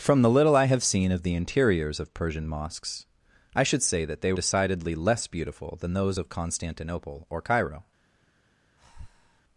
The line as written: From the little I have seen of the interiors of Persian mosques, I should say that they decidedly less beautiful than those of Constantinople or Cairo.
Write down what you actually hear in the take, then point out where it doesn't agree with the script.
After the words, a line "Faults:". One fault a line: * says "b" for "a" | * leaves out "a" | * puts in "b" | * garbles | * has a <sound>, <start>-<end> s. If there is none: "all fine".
From the little I have seen of the interiors of Persian mosques, I should say that they decidedly less beautiful than those of Constantinople or Cairo.
Faults:
* has a breath, 8.8-9.4 s